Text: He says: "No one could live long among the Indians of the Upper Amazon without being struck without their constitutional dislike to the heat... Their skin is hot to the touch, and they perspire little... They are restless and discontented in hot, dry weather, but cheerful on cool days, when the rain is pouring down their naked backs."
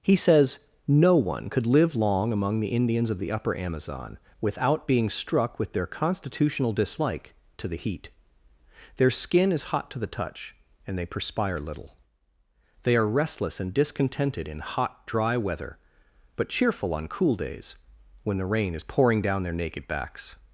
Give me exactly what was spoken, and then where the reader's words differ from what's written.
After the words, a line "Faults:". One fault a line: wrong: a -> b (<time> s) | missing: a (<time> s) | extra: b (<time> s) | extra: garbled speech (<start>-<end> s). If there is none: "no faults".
He says: "No one could live long among the Indians of the Upper Amazon without being struck with their constitutional dislike to the heat... Their skin is hot to the touch, and they perspire little... They are restless and discontented in hot, dry weather, but cheerful on cool days, when the rain is pouring down their naked backs."
Faults:
wrong: without -> with (5.6 s)